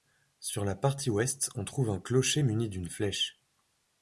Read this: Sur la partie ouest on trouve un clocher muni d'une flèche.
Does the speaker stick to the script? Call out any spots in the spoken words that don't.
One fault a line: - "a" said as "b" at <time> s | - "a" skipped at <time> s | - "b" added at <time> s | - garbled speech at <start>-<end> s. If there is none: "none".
none